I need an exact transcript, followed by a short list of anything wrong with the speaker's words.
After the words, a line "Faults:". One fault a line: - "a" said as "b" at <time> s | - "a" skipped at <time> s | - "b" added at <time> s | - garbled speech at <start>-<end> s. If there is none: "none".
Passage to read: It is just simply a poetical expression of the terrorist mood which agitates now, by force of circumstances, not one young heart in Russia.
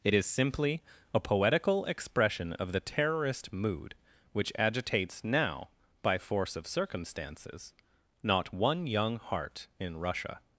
It is simply a poetical expression of the terrorist mood which agitates now, by force of circumstances, not one young heart in Russia.
Faults:
- "just" skipped at 0.2 s